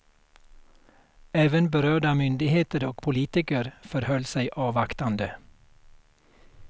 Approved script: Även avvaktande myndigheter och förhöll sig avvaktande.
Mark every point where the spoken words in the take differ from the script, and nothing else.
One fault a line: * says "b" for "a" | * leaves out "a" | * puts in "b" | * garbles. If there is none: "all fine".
* says "berörda" for "avvaktande"
* puts in "politiker"